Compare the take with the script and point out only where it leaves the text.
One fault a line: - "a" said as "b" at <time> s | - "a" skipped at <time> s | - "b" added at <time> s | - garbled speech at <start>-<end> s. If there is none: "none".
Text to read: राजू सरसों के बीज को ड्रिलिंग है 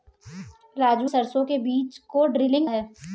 none